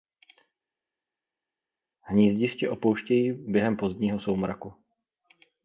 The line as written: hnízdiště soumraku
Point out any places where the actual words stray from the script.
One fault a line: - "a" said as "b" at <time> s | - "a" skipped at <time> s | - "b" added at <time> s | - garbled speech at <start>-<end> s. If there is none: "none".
- "opouštějí během pozdního" added at 2.7 s